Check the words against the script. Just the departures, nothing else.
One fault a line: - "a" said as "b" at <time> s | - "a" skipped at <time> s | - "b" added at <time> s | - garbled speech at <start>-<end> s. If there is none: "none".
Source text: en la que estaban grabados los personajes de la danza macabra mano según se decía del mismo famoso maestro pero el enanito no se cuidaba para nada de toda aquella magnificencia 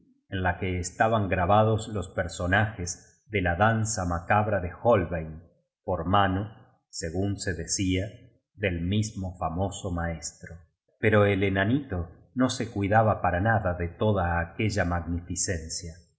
- "de holbein por" added at 4.6 s